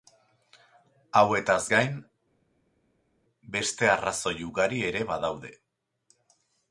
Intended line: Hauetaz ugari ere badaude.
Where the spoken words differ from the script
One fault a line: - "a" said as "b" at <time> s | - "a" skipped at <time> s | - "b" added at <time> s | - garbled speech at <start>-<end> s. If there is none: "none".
- "gain beste arrazoi" added at 1.7 s